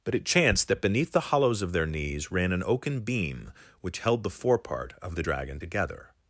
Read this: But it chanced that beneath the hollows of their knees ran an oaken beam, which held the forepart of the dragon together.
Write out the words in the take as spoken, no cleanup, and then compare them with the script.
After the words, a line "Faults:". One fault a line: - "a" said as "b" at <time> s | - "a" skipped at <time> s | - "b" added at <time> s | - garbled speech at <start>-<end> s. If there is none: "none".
But it chanced that beneath the hollows of their knees ran an oaken beam, which held the forepart of the dragon together.
Faults:
none